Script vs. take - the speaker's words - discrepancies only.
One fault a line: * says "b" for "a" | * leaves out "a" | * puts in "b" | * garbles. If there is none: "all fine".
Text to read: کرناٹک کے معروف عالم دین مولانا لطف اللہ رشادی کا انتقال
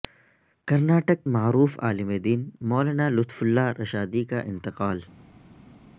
* leaves out "کے"